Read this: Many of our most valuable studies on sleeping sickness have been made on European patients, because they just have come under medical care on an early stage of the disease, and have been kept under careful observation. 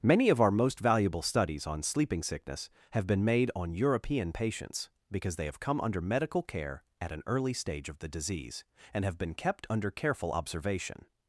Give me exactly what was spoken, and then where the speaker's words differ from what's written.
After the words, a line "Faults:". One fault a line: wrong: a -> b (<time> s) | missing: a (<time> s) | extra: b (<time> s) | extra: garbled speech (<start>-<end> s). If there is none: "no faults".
Many of our most valuable studies on sleeping sickness have been made on European patients, because they have come under medical care at an early stage of the disease, and have been kept under careful observation.
Faults:
missing: just (5.5 s)
wrong: on -> at (7.0 s)